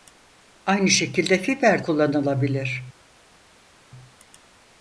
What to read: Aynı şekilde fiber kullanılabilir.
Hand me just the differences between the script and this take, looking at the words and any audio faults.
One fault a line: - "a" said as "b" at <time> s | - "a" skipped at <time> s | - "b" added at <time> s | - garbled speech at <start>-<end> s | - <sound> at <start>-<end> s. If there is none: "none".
none